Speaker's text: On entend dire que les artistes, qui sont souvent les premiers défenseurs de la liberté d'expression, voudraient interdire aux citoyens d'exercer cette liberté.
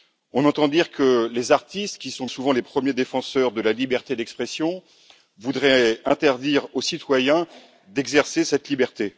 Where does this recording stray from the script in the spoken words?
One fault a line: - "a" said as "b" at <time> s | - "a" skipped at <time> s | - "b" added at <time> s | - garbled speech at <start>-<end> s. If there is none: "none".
none